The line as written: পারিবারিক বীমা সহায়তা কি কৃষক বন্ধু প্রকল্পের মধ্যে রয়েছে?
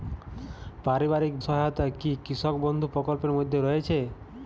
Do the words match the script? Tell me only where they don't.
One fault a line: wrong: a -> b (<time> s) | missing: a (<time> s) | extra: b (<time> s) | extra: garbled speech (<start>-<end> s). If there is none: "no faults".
missing: বীমা (1.3 s)